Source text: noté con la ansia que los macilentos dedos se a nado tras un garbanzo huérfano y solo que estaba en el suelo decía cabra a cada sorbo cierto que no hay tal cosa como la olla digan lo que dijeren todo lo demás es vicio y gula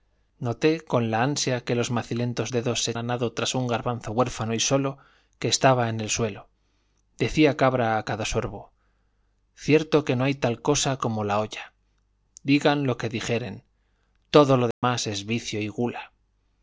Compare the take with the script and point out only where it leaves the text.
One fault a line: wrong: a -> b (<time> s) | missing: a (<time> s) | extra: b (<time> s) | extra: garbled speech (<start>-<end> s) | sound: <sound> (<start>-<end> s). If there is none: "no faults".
sound: dropout (14.7-14.8 s)